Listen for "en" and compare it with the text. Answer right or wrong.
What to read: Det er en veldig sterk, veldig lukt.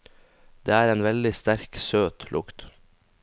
right